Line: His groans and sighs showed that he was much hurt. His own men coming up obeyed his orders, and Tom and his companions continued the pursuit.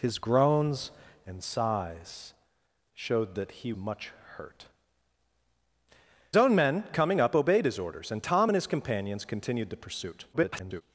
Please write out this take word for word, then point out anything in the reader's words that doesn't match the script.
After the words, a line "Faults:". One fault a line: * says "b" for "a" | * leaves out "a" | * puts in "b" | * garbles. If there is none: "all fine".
His groans and sighs showed that he much hurt. Own men coming up obeyed his orders, and Tom and his companions continued the pursuit. [garbled]
Faults:
* leaves out "was"
* leaves out "His"
* garbles